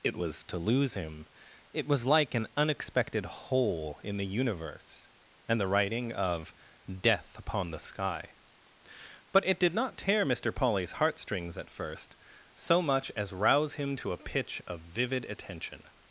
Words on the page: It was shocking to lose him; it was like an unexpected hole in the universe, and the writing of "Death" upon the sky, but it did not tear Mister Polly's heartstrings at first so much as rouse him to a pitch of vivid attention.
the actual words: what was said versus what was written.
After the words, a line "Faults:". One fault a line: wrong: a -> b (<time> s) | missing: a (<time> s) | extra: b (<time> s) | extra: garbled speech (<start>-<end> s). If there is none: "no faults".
It was to lose him; it was like an unexpected hole in the universe, and the writing of "Death" upon the sky, but it did not tear Mister Polly's heartstrings at first so much as rouse him to a pitch of vivid attention.
Faults:
missing: shocking (0.4 s)